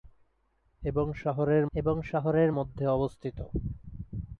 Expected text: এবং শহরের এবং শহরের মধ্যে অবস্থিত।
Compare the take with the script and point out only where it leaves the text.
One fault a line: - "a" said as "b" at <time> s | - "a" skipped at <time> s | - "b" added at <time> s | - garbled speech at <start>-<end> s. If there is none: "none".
none